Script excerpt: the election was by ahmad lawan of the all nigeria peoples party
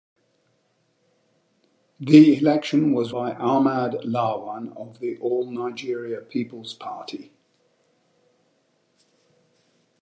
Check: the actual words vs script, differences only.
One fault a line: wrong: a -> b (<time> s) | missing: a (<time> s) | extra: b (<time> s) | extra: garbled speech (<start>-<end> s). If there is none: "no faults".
no faults